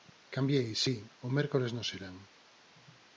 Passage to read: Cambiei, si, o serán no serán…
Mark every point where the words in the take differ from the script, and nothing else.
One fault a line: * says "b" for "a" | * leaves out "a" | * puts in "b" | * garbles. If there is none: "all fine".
* says "mércores" for "serán"